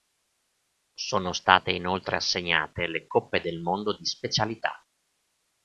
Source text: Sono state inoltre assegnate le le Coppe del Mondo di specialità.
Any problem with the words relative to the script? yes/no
yes